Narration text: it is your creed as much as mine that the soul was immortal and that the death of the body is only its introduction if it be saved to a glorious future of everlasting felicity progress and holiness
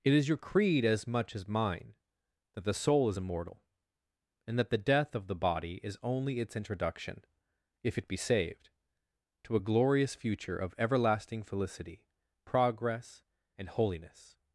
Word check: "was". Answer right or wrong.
wrong